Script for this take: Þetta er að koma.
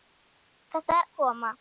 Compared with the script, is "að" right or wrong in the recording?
right